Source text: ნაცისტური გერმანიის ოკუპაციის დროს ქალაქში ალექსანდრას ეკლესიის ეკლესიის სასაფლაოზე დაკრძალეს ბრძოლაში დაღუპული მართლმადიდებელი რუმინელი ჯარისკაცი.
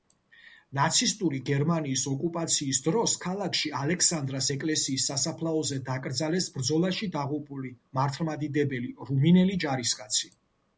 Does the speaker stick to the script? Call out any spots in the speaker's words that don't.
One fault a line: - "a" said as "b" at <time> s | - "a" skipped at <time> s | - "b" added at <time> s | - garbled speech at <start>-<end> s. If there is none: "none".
- "ეკლესიის" skipped at 5.1 s